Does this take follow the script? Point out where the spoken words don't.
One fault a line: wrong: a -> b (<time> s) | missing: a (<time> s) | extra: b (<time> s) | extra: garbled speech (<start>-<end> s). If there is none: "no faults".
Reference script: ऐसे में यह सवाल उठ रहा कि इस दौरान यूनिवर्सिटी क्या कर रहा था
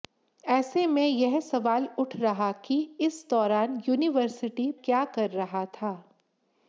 no faults